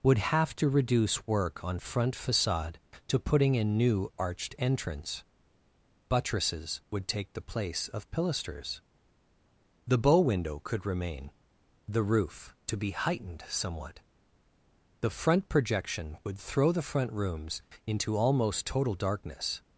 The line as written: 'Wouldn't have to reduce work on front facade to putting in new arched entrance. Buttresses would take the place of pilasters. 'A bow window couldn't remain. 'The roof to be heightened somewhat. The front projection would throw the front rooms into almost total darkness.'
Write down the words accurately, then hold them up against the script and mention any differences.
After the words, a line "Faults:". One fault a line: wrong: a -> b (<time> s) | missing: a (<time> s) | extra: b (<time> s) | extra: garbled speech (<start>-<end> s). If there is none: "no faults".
'Would have to reduce work on front facade to putting in new arched entrance. Buttresses would take the place of pilasters. 'The bow window could remain. 'The roof to be heightened somewhat. The front projection would throw the front rooms into almost total darkness.'
Faults:
wrong: Wouldn't -> Would (0.0 s)
wrong: A -> The (9.8 s)
wrong: couldn't -> could (10.6 s)